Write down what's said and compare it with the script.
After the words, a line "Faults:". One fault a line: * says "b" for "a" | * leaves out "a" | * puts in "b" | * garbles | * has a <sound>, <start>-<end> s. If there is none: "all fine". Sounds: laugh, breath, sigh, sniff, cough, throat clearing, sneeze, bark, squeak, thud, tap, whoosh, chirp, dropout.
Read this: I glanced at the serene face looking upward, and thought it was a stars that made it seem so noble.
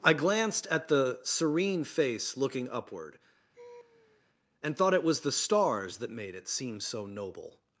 I glanced at the serene face looking upward, and thought it was the stars that made it seem so noble.
Faults:
* has a laugh, 3.5-4.2 s
* says "the" for "a"